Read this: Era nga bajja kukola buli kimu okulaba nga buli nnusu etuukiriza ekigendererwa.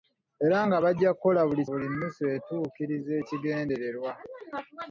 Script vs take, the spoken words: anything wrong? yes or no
yes